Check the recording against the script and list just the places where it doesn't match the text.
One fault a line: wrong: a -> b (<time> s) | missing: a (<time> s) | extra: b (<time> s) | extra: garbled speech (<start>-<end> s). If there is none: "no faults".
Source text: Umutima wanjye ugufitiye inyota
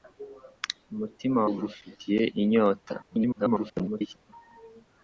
missing: wanjye (1.4 s)
extra: garbled speech (3.0-4.3 s)